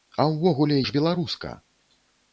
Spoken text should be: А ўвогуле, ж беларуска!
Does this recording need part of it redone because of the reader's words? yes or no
no